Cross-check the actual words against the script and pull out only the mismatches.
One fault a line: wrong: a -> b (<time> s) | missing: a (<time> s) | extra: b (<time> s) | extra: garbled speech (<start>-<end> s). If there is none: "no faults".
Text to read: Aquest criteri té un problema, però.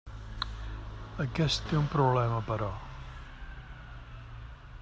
missing: criteri (1.6 s)